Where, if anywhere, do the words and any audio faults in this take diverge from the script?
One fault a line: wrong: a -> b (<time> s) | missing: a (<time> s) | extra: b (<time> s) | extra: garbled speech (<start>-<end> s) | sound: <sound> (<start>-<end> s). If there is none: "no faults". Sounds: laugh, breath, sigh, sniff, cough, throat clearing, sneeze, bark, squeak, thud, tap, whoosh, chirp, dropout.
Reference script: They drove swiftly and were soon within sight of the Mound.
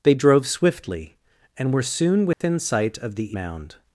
sound: dropout (2.3-2.4 s)